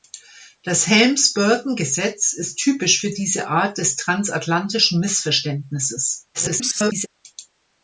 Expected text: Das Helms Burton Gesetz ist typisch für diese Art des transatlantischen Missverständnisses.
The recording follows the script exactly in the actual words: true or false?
false